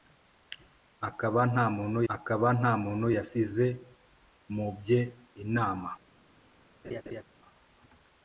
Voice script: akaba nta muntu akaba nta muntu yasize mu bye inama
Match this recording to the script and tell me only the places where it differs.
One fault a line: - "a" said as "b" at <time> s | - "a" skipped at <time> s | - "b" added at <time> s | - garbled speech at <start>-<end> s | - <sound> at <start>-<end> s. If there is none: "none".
- laugh at 6.8-7.2 s